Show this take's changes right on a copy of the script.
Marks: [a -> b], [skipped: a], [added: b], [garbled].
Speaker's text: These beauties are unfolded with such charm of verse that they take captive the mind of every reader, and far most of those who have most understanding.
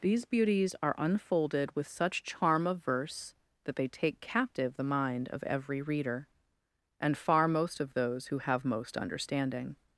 These beauties are unfolded with such charm of verse that they take captive the mind of every reader, and far most of those who have most understanding.